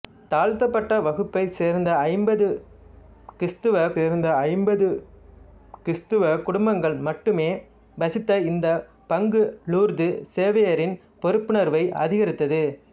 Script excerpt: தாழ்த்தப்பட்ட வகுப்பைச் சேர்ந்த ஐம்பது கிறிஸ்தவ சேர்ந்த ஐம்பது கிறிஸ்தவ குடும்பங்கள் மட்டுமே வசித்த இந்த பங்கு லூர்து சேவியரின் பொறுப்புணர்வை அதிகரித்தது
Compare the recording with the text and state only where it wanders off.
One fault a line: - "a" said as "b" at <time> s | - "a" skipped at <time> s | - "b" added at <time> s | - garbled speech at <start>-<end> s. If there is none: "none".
none